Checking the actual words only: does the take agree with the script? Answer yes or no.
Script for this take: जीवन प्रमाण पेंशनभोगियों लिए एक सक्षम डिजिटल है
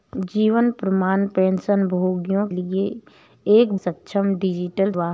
yes